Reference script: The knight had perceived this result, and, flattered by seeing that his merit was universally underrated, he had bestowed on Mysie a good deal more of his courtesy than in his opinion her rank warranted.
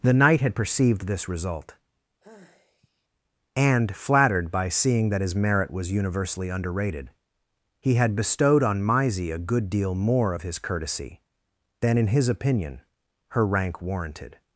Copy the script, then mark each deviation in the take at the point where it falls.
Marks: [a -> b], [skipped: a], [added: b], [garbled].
The knight had perceived this result, and, flattered by seeing that his merit was universally underrated, he had bestowed on Mysie a good deal more of his courtesy than in his opinion her rank warranted.